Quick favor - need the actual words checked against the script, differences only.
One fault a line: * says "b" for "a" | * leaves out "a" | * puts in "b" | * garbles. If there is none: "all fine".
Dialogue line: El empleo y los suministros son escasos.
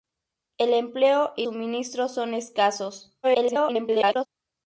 * leaves out "los"
* garbles